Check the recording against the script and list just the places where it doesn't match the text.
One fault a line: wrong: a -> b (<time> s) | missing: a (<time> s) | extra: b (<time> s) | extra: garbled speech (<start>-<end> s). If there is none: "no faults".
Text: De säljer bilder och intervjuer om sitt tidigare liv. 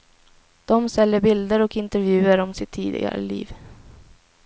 no faults